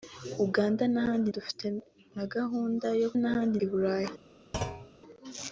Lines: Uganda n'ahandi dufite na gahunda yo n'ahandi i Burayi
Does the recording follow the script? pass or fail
pass